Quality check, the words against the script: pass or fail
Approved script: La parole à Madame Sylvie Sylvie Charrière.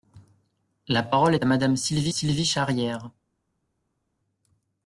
pass